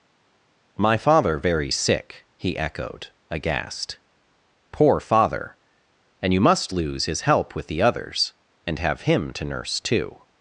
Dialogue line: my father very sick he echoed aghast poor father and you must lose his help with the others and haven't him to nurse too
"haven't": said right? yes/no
no